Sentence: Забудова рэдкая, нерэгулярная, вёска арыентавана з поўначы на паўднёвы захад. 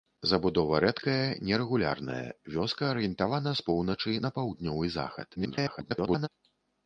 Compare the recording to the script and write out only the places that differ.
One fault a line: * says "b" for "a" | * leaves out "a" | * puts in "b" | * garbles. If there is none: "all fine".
* garbles